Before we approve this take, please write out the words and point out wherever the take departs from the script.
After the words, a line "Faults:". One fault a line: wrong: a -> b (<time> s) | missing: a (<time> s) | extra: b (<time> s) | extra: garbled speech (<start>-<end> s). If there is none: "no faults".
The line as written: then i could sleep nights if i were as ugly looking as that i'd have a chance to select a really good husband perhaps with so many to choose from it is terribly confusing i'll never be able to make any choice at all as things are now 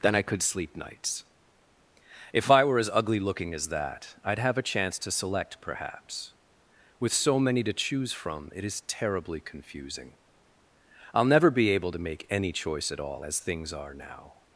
then i could sleep nights if i were as ugly looking as that i'd have a chance to select perhaps with so many to choose from it is terribly confusing i'll never be able to make any choice at all as things are now
Faults:
missing: a really good husband (5.6 s)